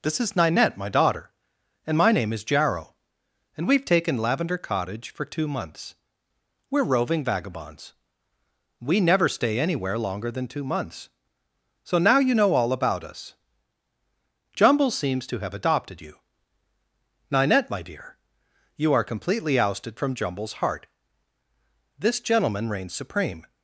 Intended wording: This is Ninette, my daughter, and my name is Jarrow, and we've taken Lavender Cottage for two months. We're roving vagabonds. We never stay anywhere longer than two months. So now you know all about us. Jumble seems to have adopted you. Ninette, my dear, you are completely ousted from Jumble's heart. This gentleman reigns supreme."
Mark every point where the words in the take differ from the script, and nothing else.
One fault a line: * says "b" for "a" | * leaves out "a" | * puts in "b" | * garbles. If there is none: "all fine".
all fine